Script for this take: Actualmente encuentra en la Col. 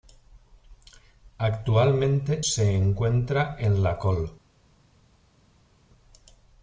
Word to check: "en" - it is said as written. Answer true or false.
true